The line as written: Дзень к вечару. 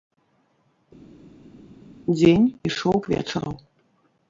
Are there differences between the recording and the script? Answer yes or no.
yes